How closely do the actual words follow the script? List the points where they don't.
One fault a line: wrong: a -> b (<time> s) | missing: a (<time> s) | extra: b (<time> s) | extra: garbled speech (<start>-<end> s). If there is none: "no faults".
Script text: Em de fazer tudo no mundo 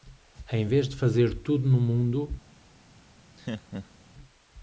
extra: vez (0.7 s)